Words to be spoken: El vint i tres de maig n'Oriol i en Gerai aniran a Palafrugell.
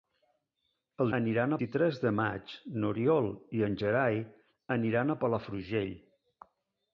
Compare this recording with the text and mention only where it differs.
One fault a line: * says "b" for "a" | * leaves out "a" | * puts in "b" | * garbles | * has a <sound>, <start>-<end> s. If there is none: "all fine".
* says "aniran" for "vint"